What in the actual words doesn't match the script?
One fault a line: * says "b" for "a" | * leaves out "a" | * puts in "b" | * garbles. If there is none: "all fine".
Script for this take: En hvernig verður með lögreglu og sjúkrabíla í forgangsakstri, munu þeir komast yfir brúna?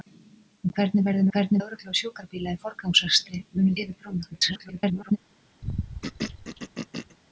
* says "hvernig" for "með"
* leaves out "þeir komast"
* garbles